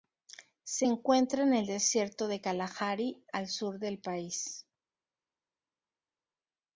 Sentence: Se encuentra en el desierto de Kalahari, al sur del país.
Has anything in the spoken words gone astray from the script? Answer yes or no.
no